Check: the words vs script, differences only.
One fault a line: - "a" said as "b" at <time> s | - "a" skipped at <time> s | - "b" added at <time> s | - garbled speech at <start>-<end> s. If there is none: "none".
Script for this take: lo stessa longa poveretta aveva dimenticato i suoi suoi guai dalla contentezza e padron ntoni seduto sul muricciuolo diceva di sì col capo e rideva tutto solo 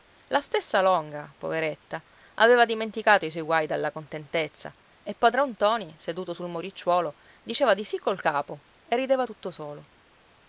- "lo" said as "la" at 0.3 s
- "suoi" skipped at 3.4 s